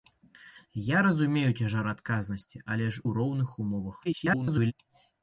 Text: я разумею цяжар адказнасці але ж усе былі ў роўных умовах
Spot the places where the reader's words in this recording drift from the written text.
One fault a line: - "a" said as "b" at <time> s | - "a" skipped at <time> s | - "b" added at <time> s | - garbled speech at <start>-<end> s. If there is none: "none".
- "усе былі" skipped at 3.0 s
- garbled speech at 4.0-4.7 s